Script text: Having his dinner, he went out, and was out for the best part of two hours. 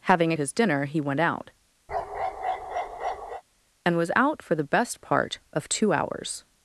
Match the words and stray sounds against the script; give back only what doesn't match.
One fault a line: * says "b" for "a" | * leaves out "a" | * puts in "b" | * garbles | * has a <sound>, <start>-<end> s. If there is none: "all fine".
* has a bark, 1.9-3.4 s